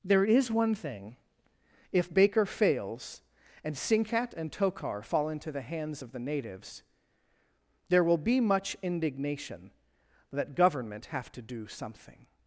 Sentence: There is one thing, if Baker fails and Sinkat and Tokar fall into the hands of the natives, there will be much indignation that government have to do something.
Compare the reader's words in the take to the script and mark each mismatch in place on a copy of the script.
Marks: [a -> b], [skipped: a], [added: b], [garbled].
There is one thing, if Baker fails and Sinkat and Tokar fall into the hands of the natives, there will be much indignation that government have to do something.